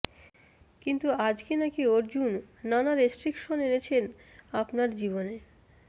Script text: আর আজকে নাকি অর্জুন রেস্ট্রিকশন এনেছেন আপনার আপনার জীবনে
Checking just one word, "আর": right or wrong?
wrong